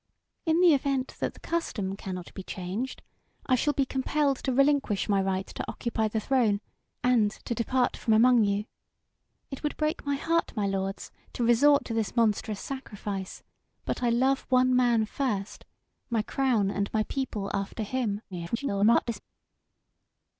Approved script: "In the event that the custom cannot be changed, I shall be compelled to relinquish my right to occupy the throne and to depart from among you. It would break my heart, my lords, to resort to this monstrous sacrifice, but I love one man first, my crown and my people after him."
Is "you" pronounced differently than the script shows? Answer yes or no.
no